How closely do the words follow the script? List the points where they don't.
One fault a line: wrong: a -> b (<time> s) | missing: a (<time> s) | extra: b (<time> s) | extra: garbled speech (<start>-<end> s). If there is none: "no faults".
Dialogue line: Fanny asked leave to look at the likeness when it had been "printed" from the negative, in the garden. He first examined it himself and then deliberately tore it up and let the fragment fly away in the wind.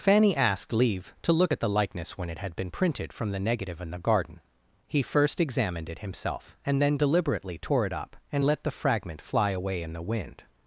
no faults